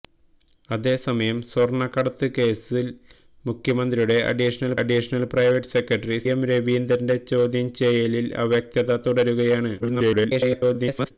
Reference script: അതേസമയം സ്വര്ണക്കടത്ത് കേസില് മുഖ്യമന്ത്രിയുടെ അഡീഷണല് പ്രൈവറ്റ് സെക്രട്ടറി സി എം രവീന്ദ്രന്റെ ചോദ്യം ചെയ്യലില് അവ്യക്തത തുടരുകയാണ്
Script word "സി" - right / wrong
wrong